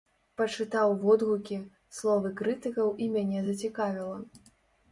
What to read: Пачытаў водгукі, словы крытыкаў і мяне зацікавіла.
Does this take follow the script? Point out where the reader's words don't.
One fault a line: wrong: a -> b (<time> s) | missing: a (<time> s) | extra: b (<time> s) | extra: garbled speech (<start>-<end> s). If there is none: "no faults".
no faults